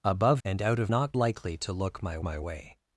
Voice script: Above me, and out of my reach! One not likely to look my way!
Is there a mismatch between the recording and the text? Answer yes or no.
yes